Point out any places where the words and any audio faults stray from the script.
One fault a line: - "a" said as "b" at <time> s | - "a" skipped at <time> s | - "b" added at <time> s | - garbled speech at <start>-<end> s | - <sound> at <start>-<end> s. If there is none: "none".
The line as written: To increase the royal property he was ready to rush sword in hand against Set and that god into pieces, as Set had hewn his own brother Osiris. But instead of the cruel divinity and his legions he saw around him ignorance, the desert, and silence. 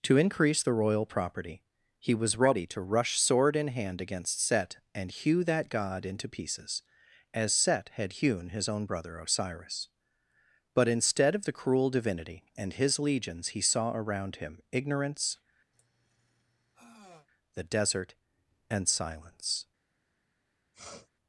- "hew" added at 5.1 s
- sigh at 15.7-17.3 s
- sniff at 20.7-21.1 s